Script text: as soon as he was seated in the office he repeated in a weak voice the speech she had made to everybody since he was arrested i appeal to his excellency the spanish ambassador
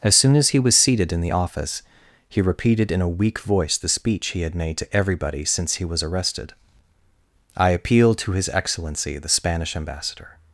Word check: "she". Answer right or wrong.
wrong